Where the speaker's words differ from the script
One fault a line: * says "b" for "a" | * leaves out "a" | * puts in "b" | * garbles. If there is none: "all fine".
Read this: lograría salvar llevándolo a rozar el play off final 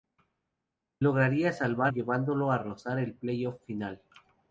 all fine